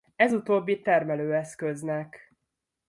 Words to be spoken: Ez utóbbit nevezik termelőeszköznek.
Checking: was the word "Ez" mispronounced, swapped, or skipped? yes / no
no